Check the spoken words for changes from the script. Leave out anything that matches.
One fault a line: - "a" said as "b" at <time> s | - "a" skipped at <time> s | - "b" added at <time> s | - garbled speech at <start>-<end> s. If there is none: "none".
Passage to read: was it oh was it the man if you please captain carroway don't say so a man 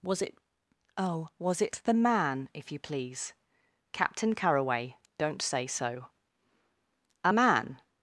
none